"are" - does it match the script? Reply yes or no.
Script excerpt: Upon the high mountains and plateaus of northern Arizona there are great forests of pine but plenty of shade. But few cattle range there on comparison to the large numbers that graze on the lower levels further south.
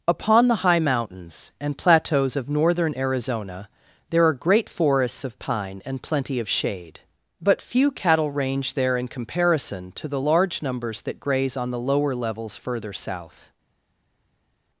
yes